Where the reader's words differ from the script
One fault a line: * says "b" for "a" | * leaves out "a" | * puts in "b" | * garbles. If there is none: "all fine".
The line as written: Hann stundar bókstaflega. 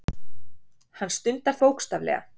all fine